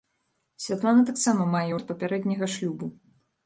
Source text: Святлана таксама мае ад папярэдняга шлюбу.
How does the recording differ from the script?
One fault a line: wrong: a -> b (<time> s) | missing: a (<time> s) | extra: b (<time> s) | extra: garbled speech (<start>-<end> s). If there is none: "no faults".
no faults